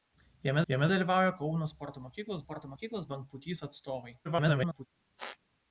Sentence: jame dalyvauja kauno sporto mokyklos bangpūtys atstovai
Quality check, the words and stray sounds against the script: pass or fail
fail